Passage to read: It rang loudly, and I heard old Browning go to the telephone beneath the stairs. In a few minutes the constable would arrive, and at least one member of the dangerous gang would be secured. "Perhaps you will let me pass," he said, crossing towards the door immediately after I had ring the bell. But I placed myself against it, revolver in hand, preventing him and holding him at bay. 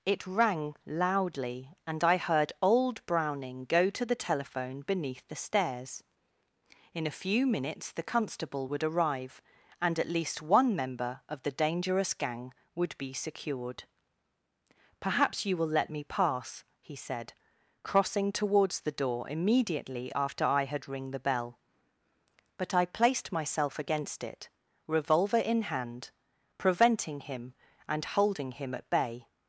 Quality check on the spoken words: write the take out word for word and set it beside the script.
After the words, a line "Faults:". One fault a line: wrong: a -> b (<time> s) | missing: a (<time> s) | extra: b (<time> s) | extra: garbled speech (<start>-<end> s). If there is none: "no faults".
It rang loudly, and I heard old Browning go to the telephone beneath the stairs. In a few minutes the constable would arrive, and at least one member of the dangerous gang would be secured. "Perhaps you will let me pass," he said, crossing towards the door immediately after I had ring the bell. But I placed myself against it, revolver in hand, preventing him and holding him at bay.
Faults:
no faults